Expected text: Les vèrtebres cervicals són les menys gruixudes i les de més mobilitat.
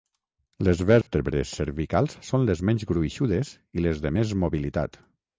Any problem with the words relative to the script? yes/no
no